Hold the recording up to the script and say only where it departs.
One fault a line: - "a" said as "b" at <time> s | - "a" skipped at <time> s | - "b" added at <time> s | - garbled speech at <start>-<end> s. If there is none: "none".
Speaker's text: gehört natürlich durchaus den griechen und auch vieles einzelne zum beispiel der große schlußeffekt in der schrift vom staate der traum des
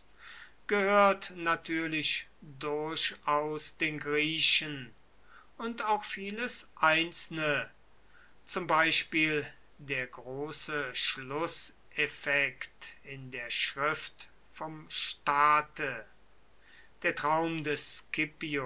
none